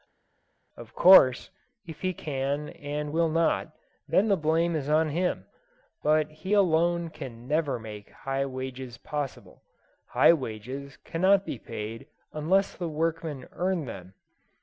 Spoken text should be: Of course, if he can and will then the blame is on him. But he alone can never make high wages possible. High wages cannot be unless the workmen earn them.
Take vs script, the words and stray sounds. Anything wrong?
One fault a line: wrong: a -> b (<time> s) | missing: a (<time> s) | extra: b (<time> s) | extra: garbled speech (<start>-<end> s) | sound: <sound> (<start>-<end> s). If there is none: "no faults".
extra: not (3.3 s)
extra: paid (11.6 s)